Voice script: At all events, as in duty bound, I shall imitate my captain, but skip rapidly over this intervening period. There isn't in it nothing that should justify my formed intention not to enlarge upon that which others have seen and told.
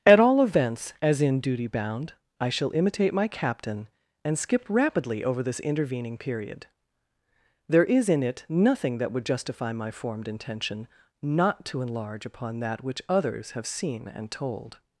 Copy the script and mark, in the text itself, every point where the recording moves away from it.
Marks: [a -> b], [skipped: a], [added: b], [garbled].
At all events, as in duty bound, I shall imitate my captain, [but -> and] skip rapidly over this intervening period. There [isn't -> is] in it nothing that [should -> would] justify my formed intention not to enlarge upon that which others have seen and told.